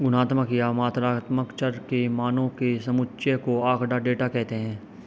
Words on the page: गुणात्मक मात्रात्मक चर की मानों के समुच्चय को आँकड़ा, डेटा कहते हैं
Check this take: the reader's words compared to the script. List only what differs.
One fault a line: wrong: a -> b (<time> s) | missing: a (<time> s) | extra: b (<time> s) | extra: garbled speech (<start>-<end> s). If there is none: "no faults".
extra: या (0.5 s)
wrong: की -> के (1.7 s)